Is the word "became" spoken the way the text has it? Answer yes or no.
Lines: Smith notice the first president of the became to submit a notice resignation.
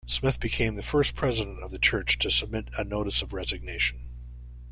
no